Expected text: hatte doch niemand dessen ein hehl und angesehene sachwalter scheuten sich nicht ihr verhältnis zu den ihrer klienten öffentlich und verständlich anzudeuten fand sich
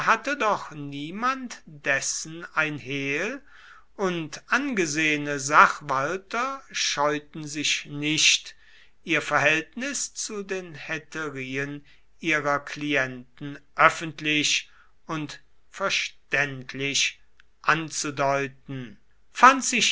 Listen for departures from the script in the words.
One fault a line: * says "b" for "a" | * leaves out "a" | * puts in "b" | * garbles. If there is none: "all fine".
* puts in "hetärien"